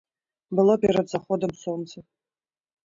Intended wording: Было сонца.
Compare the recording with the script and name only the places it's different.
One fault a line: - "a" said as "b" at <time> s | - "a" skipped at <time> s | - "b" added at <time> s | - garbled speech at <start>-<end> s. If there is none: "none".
- "перад заходам" added at 0.8 s